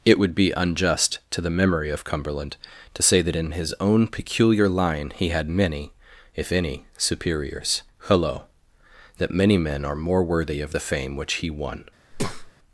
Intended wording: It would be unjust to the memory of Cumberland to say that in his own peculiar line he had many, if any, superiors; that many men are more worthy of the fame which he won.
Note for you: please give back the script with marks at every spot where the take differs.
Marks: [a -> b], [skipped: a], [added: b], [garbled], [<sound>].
It would be unjust to the memory of Cumberland to say that in his own peculiar line he had many, if any, superiors; [added: hullo] that many men are more worthy of the fame which he won. [breath]